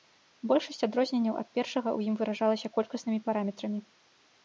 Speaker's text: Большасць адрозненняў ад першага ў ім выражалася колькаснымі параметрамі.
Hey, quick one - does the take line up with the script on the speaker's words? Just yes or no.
yes